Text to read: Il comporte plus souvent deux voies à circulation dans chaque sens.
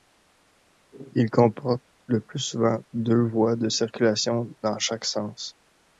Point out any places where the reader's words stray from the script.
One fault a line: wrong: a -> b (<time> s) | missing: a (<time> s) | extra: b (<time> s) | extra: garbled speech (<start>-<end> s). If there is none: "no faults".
extra: le (2.1 s)
wrong: à -> de (3.6 s)